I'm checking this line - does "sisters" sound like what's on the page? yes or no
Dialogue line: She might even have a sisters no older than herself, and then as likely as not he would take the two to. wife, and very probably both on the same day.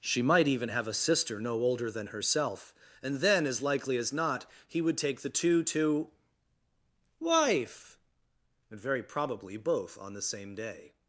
no